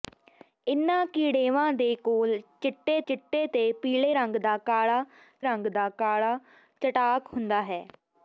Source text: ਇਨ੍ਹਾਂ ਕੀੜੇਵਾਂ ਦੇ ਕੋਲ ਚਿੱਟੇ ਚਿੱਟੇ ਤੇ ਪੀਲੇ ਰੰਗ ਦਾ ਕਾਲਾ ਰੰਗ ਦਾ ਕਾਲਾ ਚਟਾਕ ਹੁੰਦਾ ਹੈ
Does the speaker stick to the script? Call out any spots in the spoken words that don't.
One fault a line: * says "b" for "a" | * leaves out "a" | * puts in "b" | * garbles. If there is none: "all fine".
all fine